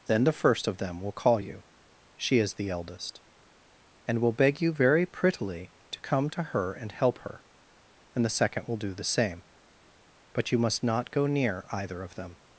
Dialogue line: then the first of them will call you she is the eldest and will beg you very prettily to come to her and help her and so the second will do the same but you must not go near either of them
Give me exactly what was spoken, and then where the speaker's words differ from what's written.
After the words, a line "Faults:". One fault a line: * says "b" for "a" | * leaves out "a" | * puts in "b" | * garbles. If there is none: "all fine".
then the first of them will call you she is the eldest and will beg you very prettily to come to her and help her and the second will do the same but you must not go near either of them
Faults:
* leaves out "so"